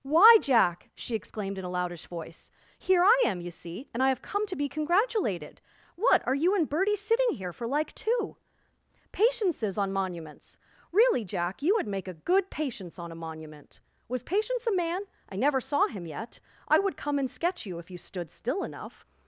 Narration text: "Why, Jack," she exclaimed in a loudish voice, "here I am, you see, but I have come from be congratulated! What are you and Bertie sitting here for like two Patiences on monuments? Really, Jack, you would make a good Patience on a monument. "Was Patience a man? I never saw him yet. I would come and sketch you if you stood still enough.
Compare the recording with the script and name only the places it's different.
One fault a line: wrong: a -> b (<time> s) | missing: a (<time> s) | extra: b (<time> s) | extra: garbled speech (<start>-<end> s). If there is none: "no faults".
wrong: but -> and (3.9 s)
wrong: from -> to (4.5 s)